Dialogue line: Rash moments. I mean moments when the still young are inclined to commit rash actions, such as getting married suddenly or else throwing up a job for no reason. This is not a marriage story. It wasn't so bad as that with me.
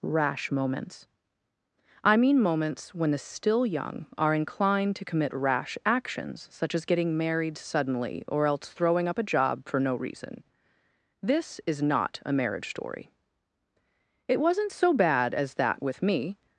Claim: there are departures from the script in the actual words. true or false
false